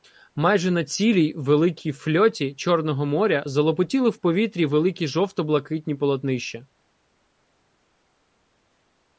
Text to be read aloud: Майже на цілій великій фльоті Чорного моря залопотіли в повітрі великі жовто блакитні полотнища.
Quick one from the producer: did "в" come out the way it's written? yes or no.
yes